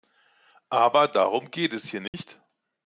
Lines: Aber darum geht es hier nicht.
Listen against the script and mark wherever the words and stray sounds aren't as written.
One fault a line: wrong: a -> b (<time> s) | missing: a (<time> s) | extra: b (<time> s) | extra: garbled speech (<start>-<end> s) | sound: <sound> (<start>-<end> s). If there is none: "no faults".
sound: dropout (2.1-2.1 s)